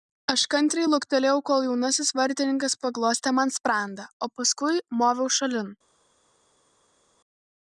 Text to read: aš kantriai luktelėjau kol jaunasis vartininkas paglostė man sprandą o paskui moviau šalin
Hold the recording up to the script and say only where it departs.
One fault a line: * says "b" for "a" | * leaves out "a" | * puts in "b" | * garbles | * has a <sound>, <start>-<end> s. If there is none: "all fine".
all fine